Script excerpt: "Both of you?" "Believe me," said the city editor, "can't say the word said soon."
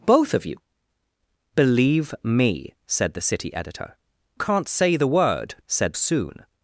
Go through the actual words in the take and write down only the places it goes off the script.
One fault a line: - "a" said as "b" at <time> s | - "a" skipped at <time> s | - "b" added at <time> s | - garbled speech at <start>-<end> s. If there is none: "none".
none